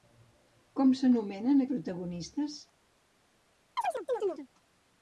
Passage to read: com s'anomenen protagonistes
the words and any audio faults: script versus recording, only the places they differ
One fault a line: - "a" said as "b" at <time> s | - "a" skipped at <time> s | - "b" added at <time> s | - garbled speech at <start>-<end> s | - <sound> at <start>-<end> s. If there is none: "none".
- chirp at 3.8-4.5 s